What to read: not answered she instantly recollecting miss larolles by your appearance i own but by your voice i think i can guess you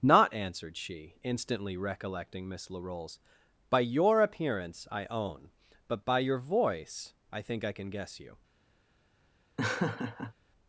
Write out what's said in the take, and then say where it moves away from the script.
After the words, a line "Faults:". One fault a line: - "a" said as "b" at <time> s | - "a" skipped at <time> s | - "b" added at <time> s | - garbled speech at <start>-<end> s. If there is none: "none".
not answered she instantly recollecting miss larolles by your appearance i own but by your voice i think i can guess you
Faults:
none